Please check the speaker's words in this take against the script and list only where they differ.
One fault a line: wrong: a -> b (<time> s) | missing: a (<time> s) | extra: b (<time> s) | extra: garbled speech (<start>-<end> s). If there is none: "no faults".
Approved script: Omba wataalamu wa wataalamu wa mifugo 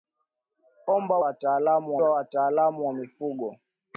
no faults